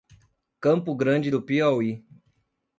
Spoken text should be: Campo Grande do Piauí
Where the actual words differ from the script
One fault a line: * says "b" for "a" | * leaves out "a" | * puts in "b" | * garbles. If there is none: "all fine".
all fine